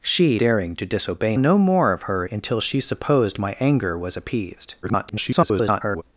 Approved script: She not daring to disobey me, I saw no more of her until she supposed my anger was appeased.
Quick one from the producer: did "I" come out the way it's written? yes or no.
no